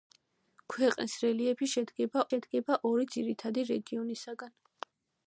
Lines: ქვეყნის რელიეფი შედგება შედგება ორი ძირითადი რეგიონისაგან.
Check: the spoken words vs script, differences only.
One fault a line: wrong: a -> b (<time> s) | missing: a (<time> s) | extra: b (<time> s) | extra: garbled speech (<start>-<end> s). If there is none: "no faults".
no faults